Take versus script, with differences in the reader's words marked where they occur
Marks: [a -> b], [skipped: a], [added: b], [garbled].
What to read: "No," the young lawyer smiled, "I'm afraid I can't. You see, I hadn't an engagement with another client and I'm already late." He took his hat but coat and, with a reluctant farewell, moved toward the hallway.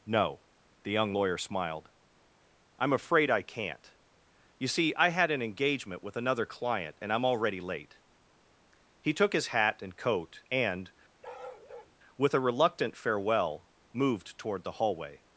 "No," the young lawyer smiled, "I'm afraid I can't. You see, I [hadn't -> had] an engagement with another client and I'm already late." He took his hat [but -> and] coat and, with a reluctant farewell, moved toward the hallway.